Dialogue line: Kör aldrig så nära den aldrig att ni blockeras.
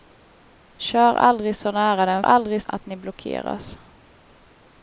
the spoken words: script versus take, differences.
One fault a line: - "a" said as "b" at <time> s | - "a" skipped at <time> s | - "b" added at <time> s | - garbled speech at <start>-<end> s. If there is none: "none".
none